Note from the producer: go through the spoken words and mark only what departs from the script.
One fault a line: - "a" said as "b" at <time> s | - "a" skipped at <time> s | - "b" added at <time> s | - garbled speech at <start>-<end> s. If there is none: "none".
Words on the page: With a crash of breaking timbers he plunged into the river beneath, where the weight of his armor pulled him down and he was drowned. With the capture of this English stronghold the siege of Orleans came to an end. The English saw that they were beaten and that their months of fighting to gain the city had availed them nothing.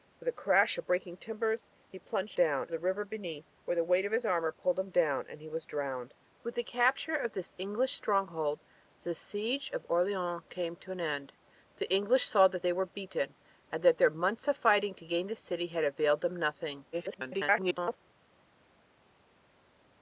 - "into" said as "down" at 2.3 s
- garbled speech at 16.9-18.0 s